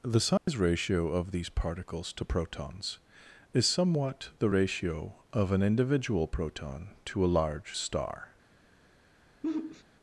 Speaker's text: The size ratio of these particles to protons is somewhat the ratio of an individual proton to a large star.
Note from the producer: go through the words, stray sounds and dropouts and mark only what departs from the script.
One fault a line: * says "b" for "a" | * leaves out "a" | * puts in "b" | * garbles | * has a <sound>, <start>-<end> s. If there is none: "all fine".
* has a dropout, 0.4-0.5 s
* has a sigh, 9.4-9.8 s